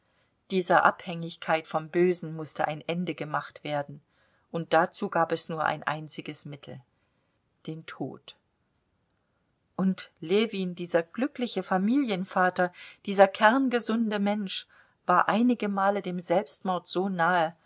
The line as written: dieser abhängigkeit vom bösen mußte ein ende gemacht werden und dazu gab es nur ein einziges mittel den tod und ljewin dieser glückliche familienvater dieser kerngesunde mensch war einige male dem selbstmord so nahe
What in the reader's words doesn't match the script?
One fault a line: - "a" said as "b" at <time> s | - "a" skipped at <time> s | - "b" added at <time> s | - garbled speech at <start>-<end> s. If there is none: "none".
none